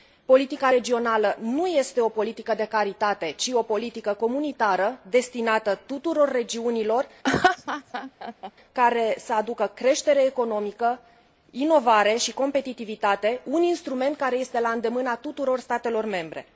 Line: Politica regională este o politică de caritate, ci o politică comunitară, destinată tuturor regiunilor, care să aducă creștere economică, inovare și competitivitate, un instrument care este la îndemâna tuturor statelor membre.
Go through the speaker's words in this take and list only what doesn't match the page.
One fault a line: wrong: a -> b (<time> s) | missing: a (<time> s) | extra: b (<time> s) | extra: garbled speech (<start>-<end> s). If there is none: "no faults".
extra: nu (1.4 s)